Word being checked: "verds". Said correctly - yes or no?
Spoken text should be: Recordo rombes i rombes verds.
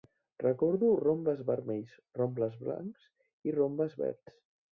yes